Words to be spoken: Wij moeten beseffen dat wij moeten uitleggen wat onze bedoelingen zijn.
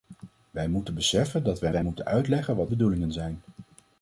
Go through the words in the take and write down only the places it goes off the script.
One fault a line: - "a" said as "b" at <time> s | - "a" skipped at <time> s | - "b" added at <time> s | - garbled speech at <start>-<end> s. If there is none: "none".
- "wij" added at 1.7 s
- "onze" skipped at 2.7 s